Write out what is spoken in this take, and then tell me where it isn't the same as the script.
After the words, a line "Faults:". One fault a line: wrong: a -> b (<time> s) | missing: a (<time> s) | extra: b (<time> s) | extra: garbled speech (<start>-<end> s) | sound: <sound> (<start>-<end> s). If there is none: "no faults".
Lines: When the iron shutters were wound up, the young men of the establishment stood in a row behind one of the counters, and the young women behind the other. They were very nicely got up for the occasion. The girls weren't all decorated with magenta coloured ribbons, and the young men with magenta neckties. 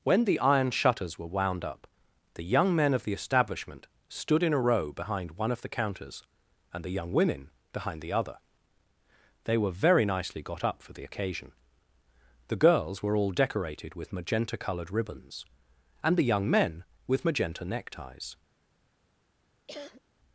When the iron shutters were wound up, the young men of the establishment stood in a row behind one of the counters, and the young women behind the other. They were very nicely got up for the occasion. The girls were all decorated with magenta coloured ribbons, and the young men with magenta neckties.
Faults:
wrong: weren't -> were (13.0 s)
sound: cough (19.7-20.0 s)